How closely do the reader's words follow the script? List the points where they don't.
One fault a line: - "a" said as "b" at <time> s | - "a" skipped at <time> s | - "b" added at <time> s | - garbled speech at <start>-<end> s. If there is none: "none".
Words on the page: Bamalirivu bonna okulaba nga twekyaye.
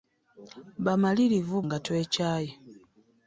- "bonna okulaba" skipped at 1.6 s